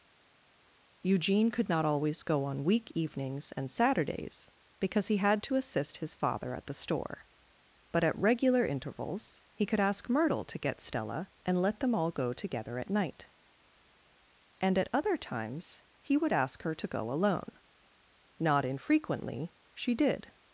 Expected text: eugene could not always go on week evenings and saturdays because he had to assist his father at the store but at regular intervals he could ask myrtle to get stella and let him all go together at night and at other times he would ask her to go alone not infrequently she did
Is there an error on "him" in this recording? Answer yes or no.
yes